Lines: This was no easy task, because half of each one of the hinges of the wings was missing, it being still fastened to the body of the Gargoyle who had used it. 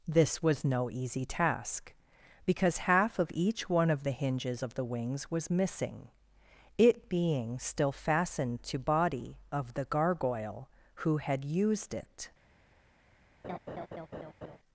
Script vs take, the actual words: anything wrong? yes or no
yes